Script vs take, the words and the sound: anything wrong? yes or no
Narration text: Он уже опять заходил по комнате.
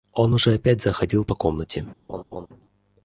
yes